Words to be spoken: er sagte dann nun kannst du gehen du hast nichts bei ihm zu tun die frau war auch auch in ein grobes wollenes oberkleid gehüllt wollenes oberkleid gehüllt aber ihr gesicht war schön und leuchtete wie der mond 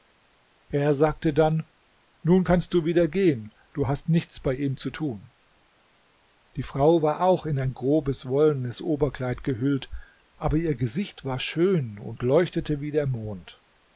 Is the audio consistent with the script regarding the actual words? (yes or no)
no